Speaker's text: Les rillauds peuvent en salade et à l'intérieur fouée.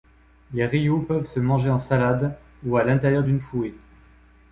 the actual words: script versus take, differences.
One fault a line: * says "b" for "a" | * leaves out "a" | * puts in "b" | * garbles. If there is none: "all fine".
* puts in "se manger"
* says "ou" for "et"
* puts in "d'une"